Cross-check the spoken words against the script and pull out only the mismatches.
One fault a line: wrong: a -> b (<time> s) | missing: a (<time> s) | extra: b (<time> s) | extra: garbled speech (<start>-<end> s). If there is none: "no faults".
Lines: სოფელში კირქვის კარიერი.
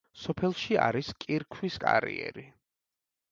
extra: არის (0.8 s)